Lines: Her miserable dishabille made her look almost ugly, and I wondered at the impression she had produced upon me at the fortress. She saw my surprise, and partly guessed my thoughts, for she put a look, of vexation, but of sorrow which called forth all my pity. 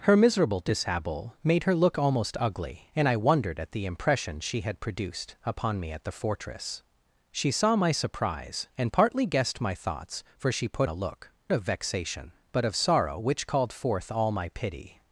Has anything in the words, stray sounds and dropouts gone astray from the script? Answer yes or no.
no